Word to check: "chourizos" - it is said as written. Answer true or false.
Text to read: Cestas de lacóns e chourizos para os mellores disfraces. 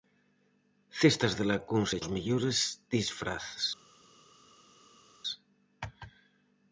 false